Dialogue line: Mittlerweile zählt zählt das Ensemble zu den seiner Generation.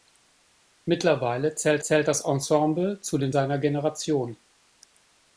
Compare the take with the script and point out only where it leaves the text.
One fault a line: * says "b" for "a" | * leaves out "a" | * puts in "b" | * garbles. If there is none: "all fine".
all fine